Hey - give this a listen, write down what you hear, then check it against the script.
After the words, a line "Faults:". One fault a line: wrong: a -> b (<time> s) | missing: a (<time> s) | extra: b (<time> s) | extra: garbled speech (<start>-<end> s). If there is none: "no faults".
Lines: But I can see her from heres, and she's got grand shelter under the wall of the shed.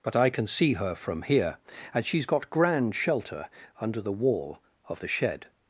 But I can see her from here, and she's got grand shelter under the wall of the shed.
Faults:
wrong: heres -> here (1.2 s)